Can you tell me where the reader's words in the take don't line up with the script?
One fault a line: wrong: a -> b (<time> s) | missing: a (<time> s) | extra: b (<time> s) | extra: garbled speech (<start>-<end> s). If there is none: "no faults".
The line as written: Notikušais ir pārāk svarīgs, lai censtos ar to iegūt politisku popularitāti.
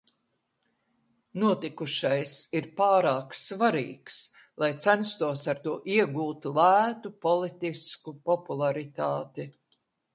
extra: lētu (6.6 s)